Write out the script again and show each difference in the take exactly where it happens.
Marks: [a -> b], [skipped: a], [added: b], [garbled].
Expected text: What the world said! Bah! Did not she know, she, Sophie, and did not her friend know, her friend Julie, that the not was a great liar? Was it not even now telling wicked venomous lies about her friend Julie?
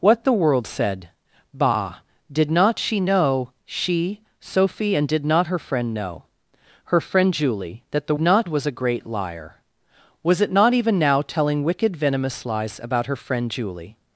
What the world said! Bah! Did not she know, she, Sophie, and did not her friend know, her friend Julie, that the not was a great liar? Was it not even now telling wicked venomous lies about her friend Julie?